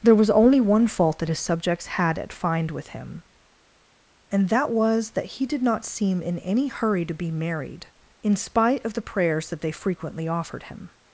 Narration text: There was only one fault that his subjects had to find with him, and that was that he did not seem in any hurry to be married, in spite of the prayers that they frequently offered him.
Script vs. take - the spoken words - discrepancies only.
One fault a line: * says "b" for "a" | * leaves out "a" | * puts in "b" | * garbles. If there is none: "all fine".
* says "at" for "to"